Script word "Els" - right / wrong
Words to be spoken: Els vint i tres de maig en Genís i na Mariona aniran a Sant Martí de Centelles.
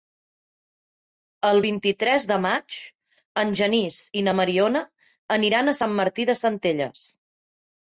wrong